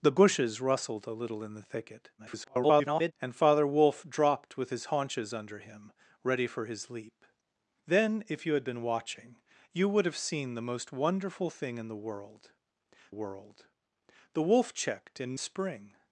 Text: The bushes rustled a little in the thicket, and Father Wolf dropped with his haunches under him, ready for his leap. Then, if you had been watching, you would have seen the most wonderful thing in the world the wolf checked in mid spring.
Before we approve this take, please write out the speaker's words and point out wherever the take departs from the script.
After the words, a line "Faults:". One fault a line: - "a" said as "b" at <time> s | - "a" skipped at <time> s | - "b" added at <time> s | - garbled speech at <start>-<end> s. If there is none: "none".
The bushes rustled a little in the thicket, [garbled] and Father Wolf dropped with his haunches under him, ready for his leap. Then, if you had been watching, you would have seen the most wonderful thing in the world world the wolf checked in spring.
Faults:
- garbled speech at 2.2-3.1 s
- "world" added at 13.1 s
- "mid" skipped at 15.4 s